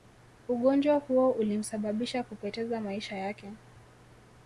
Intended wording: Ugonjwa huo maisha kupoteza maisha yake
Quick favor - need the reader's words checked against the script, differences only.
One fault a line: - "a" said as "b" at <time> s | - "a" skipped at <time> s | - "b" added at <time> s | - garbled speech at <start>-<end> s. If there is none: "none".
- "maisha" said as "ulimsababisha" at 1.3 s